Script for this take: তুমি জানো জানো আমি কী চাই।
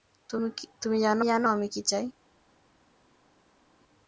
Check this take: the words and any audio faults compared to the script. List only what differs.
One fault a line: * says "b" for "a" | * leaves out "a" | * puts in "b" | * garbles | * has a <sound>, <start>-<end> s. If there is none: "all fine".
all fine